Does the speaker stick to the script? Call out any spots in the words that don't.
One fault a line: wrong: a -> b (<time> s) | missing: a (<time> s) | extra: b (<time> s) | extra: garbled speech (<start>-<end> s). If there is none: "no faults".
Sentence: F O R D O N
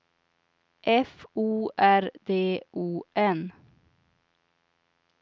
no faults